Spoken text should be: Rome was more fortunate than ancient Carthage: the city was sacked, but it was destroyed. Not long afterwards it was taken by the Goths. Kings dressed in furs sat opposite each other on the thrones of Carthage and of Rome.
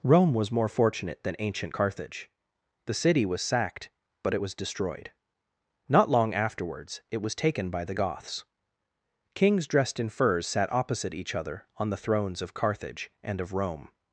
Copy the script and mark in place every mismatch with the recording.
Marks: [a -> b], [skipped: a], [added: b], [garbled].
Rome was more fortunate than ancient Carthage: the city was sacked, but it was destroyed. Not long afterwards it was taken by the Goths. Kings dressed in furs sat opposite each other on the thrones of Carthage and of Rome.